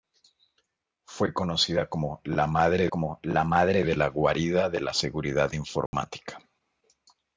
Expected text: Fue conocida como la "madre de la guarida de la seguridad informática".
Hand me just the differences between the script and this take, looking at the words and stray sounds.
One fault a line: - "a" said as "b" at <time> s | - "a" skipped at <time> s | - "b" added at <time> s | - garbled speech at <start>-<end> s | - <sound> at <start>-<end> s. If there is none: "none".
- "como la madre" added at 2.9 s
- dropout at 5.9-5.9 s